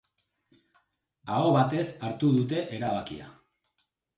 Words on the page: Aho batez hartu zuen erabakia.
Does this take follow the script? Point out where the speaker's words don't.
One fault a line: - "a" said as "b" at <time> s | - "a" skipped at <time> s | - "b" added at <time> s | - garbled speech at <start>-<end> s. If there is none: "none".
- "zuen" said as "dute" at 2.4 s